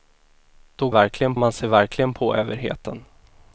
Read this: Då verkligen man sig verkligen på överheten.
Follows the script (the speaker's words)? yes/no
yes